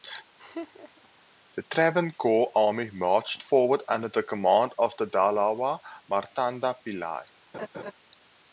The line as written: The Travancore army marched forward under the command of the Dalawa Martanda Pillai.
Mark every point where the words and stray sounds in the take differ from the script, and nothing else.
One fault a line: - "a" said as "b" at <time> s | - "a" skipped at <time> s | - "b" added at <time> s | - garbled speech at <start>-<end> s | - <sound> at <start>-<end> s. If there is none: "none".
- laugh at 0.4-1.1 s
- laugh at 7.5-7.9 s